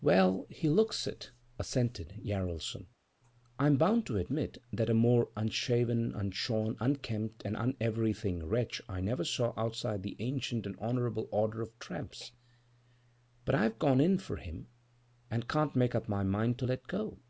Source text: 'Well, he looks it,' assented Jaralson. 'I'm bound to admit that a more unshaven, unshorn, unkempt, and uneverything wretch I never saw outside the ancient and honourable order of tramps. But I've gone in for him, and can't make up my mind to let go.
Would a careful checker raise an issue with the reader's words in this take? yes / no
no